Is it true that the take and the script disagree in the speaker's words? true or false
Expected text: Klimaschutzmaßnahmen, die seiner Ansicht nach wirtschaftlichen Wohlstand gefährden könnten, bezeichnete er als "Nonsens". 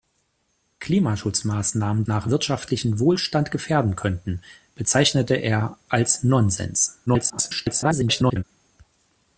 true